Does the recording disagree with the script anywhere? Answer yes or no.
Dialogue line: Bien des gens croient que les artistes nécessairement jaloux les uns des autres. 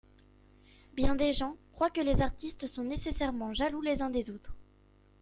yes